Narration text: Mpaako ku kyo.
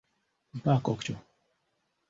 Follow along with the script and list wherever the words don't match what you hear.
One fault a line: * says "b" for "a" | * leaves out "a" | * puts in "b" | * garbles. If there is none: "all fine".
all fine